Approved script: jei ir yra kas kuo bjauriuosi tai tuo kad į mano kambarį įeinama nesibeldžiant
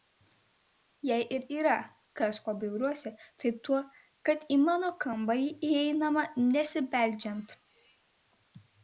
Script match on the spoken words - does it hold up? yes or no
yes